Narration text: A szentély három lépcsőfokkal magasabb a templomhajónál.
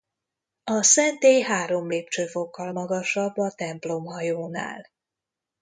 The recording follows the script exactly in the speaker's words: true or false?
true